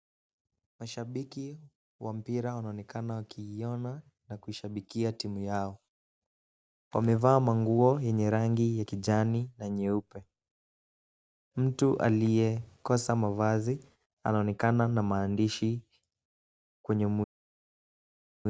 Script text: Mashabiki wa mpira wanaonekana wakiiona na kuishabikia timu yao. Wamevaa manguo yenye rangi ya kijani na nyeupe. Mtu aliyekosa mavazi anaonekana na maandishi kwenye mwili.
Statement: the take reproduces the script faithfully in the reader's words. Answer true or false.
true